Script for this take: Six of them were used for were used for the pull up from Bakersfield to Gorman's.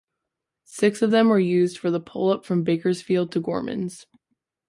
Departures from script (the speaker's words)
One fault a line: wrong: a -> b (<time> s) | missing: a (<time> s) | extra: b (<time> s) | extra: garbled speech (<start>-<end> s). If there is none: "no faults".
missing: were used for (1.9 s)